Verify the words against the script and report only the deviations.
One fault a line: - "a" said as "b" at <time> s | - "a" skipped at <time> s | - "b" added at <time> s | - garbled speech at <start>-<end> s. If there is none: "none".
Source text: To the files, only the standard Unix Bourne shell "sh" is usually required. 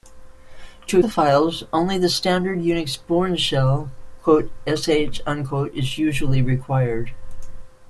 none